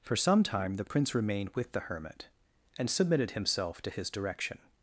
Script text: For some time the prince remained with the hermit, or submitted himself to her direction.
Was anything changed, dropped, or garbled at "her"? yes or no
yes